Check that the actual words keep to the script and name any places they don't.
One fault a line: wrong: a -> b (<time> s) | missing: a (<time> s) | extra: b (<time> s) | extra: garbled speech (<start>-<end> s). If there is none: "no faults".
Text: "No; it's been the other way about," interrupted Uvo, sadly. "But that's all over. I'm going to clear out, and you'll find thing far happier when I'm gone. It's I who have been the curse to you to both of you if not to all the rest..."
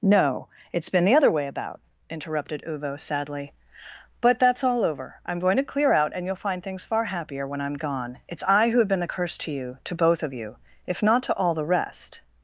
wrong: thing -> things (6.6 s)